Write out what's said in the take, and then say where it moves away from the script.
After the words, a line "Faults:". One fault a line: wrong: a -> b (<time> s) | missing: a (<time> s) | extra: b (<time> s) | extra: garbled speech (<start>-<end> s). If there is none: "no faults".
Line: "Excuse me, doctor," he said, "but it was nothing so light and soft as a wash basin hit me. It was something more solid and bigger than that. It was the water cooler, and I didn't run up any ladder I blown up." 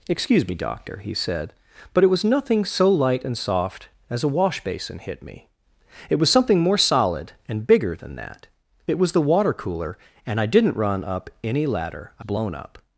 "Excuse me, doctor," he said, "but it was nothing so light and soft as a wash basin hit me. It was something more solid and bigger than that. It was the water cooler, and I didn't run up any ladder I blown up."
Faults:
no faults